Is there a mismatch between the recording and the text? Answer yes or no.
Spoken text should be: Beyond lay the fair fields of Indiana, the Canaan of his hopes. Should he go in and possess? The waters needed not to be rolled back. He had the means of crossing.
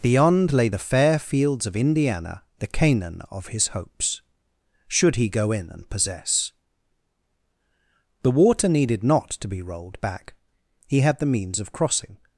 yes